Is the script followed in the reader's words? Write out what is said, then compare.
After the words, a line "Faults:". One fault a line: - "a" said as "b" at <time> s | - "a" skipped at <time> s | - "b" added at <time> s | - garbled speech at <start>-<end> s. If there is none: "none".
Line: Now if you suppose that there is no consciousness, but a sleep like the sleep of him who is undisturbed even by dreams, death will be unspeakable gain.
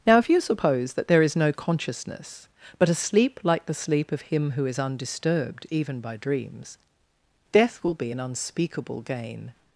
Now if you suppose that there is no consciousness, but a sleep like the sleep of him who is undisturbed even by dreams, death will be an unspeakable gain.
Faults:
- "an" added at 8.1 s